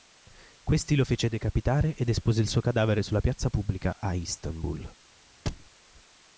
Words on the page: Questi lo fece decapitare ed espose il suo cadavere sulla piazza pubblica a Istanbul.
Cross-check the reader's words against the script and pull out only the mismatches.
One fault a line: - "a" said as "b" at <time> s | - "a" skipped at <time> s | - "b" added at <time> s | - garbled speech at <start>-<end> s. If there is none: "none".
none